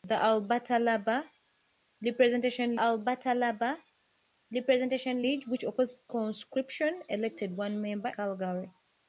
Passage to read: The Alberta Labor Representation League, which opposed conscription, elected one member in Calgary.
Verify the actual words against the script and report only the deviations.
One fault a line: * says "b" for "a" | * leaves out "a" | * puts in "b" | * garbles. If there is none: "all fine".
* puts in "Alberta Labor Representation"
* leaves out "in"